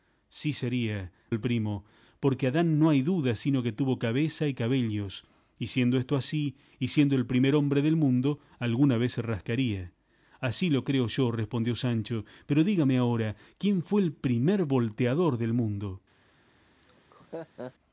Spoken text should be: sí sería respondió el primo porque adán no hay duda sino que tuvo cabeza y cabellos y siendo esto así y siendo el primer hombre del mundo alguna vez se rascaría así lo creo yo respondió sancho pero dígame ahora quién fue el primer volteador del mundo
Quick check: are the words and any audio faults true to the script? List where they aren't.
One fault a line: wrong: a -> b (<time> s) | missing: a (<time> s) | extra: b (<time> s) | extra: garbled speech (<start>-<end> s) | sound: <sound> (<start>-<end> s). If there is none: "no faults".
missing: respondió (1.1 s)
sound: laugh (16.8-17.7 s)